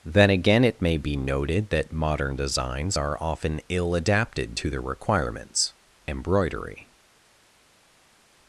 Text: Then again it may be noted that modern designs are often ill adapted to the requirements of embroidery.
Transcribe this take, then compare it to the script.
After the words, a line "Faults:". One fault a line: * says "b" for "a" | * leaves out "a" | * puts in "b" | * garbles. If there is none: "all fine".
Then again it may be noted that modern designs are often ill adapted to the requirements embroidery.
Faults:
* leaves out "of"